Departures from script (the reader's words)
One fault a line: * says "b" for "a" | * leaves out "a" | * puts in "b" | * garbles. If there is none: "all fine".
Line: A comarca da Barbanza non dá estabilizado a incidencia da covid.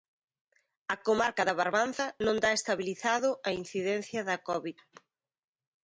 all fine